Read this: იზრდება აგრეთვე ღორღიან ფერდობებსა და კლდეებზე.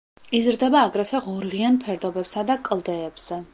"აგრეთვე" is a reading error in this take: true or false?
false